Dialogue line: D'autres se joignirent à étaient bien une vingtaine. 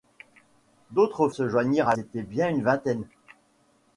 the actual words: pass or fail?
pass